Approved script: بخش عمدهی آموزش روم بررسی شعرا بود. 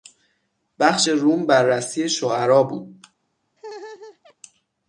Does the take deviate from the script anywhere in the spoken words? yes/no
yes